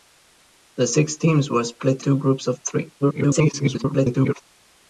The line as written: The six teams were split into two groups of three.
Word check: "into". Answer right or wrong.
wrong